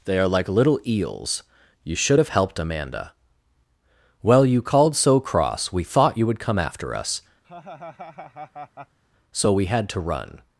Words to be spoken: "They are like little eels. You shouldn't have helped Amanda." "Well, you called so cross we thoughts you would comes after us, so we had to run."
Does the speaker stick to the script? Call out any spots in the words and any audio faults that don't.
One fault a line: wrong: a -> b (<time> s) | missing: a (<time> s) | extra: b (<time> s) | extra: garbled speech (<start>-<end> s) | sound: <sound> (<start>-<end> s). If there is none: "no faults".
wrong: shouldn't -> should (1.9 s)
wrong: thoughts -> thought (5.8 s)
wrong: comes -> come (6.4 s)
sound: laugh (7.4-9.0 s)